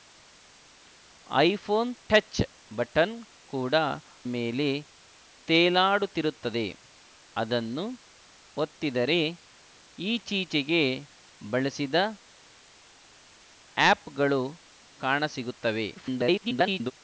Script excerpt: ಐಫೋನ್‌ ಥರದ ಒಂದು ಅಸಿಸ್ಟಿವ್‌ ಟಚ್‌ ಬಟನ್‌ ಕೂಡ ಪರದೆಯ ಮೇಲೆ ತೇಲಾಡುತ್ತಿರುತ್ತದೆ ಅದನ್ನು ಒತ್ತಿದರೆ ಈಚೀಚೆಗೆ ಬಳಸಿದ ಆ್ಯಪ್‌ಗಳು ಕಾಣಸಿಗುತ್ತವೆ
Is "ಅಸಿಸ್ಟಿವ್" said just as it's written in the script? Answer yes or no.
no